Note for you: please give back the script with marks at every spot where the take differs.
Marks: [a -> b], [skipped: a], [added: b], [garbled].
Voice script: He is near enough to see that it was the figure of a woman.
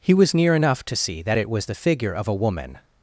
He [is -> was] near enough to see that it was the figure of a woman.